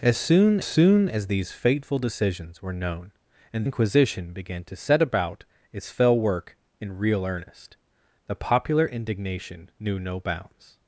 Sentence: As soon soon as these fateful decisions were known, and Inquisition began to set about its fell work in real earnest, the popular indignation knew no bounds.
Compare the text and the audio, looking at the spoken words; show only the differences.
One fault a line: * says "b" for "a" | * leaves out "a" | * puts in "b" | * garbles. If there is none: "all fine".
all fine